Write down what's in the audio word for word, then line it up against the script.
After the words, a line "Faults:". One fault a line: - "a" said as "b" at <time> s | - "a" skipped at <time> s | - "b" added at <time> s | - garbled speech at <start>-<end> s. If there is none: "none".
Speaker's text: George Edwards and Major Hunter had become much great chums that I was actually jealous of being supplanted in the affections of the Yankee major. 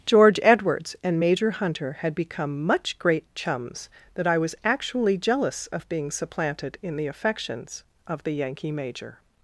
George Edwards and Major Hunter had become much great chums that I was actually jealous of being supplanted in the affections of the Yankee major.
Faults:
none